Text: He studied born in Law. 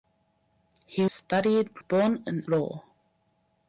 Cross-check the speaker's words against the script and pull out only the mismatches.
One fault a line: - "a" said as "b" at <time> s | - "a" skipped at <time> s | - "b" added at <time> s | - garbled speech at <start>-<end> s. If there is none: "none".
none